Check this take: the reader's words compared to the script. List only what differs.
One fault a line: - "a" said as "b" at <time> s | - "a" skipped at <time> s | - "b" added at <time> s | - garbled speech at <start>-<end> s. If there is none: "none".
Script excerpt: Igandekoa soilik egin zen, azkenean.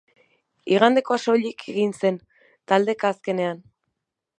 - "taldeka" added at 2.7 s